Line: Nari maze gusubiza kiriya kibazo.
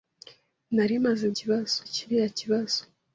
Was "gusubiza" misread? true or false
true